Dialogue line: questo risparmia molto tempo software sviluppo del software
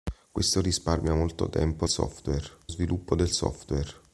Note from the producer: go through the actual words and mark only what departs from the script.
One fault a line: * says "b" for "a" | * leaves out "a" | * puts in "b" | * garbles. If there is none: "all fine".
all fine